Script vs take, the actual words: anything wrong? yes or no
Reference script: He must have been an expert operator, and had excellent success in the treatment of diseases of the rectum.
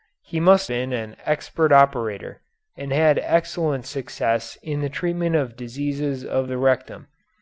yes